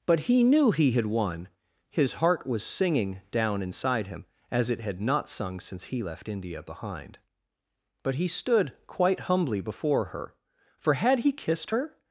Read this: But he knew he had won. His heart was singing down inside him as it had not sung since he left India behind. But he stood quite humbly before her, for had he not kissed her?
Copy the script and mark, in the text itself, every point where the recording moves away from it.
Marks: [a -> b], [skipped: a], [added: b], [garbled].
But he knew he had won. His heart was singing down inside him as it had not sung since he left India behind. But he stood quite humbly before her, for had he [skipped: not] kissed her?